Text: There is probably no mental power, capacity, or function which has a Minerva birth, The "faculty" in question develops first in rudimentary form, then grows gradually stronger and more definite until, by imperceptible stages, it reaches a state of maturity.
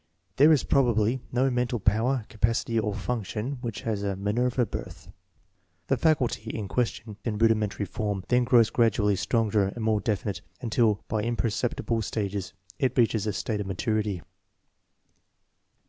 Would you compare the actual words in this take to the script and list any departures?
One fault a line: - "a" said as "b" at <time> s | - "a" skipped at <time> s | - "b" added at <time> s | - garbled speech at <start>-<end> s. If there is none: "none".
- "develops first" skipped at 7.2 s